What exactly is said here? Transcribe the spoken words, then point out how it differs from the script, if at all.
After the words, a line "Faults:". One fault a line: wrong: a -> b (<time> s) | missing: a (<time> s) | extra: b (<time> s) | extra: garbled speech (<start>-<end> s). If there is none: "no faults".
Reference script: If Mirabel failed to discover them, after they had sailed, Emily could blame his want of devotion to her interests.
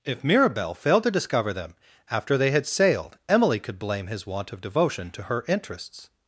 If Mirabel failed to discover them, after they had sailed, Emily could blame his want of devotion to her interests.
Faults:
no faults